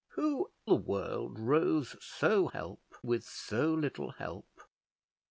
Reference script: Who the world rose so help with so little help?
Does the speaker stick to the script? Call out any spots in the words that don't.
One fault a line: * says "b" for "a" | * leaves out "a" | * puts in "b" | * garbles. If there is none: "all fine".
all fine